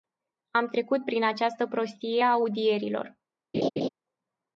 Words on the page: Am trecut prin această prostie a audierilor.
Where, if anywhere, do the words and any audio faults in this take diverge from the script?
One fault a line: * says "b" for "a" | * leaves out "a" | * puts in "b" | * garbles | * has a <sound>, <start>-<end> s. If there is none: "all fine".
* has a laugh, 3.5-3.9 s